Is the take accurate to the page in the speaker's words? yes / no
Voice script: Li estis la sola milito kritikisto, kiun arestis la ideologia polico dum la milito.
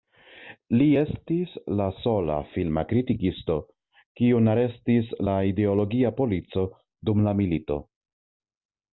no